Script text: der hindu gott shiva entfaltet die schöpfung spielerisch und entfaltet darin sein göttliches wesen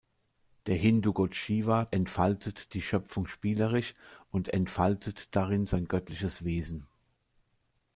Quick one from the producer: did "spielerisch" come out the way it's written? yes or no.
yes